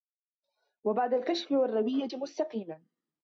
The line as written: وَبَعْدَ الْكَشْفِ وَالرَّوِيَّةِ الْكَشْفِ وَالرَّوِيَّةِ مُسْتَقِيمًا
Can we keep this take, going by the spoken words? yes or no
no